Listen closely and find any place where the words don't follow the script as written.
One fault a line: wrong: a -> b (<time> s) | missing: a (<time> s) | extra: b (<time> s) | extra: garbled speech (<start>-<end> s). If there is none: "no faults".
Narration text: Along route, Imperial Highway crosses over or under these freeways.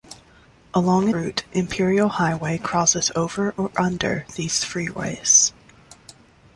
no faults